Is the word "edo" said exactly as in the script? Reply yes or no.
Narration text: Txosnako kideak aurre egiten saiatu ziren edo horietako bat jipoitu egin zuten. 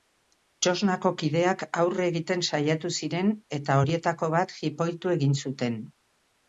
no